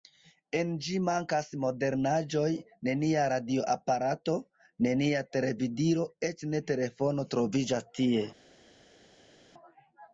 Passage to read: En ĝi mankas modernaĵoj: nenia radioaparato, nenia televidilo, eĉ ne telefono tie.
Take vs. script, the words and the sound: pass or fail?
fail